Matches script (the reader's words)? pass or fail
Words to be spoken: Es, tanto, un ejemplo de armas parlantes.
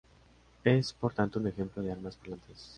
fail